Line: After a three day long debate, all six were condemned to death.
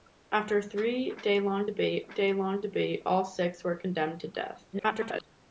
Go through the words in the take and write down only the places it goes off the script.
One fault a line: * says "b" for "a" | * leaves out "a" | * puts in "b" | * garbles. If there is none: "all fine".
* puts in "day long debate"
* garbles